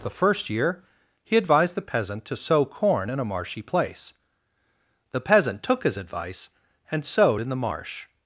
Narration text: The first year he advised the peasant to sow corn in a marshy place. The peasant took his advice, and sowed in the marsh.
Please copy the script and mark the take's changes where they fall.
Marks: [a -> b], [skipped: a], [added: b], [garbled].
The first year he advised the peasant to sow corn in a marshy place. The peasant took his advice, and sowed in the marsh.